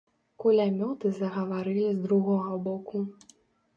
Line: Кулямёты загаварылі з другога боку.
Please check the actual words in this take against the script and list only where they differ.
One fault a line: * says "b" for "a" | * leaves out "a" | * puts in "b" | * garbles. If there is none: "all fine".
all fine